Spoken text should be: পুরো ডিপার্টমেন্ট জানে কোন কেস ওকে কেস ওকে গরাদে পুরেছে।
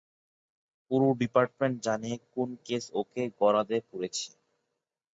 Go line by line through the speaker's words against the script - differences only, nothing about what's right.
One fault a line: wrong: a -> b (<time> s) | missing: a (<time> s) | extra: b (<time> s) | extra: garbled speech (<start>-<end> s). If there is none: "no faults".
missing: কেস ওকে (3.2 s)